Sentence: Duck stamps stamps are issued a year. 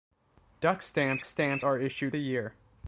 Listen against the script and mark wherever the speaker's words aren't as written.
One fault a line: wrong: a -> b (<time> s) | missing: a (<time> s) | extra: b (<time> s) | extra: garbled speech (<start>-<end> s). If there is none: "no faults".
no faults